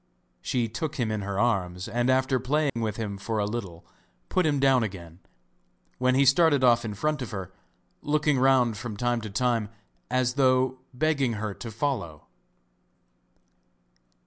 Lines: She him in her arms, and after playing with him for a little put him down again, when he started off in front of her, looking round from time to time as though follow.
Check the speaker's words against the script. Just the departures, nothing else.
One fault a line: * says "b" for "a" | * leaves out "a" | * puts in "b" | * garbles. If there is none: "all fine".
* puts in "took"
* puts in "begging her to"